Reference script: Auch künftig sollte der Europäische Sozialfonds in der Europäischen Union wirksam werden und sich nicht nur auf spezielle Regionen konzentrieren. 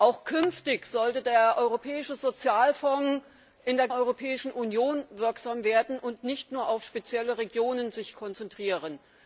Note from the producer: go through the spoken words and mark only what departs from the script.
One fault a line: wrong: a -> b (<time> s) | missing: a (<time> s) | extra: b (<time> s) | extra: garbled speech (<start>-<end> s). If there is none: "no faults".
no faults